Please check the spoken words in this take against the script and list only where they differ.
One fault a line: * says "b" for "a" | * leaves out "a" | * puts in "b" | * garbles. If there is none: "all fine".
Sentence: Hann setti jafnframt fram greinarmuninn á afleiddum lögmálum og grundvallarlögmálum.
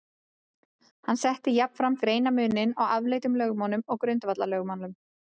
* leaves out "fram"